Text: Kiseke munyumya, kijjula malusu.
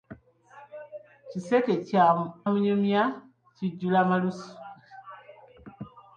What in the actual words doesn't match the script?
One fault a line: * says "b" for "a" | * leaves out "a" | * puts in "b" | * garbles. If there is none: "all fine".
all fine